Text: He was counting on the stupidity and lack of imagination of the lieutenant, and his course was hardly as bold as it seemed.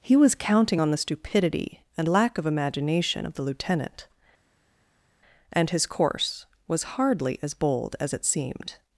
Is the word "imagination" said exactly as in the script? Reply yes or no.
yes